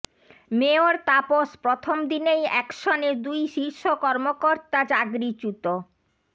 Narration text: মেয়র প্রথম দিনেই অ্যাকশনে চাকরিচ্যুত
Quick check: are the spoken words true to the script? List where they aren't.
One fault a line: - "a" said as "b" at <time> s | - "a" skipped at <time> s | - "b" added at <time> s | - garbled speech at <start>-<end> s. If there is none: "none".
- "তাপস" added at 1.1 s
- "দুই শীর্ষ কর্মকর্তা" added at 3.3 s